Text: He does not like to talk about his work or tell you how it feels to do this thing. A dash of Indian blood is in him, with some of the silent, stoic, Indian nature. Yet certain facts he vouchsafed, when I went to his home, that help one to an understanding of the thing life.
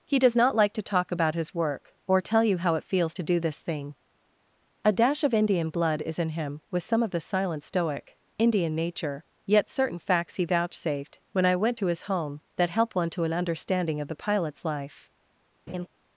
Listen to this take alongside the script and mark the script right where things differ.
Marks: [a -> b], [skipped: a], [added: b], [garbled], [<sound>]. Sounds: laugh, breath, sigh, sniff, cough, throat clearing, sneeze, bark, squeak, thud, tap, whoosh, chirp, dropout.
He does not like to talk about his work or tell you how it feels to do this thing. A dash of Indian blood is in him, with some of the silent, stoic, Indian nature. Yet certain facts he vouchsafed, when I went to his home, that help one to an understanding of the [thing -> pilot's] life. [laugh]